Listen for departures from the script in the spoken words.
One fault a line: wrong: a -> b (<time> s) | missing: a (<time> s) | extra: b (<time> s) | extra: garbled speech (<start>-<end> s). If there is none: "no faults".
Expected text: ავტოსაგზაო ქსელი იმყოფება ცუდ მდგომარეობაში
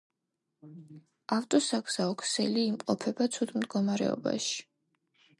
no faults